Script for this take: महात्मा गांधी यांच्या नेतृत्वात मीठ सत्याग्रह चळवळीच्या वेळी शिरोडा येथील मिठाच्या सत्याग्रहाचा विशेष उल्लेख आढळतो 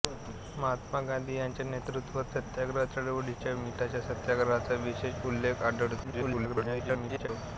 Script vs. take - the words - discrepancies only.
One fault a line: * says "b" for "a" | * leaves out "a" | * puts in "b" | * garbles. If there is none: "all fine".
* leaves out "मीठ"
* leaves out "वेळी शिरोडा येथील"
* garbles